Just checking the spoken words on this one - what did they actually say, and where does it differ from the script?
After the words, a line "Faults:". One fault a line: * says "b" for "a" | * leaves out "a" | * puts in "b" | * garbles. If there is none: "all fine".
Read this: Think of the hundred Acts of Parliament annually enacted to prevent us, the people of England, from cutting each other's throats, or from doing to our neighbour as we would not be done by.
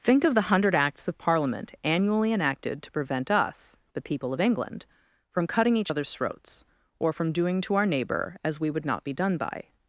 Think of the hundred Acts of Parliament annually enacted to prevent us, the people of England, from cutting each other's throats, or from doing to our neighbour as we would not be done by.
Faults:
all fine